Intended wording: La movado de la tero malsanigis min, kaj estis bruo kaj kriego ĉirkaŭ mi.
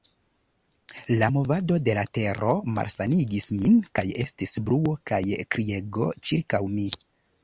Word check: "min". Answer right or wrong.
right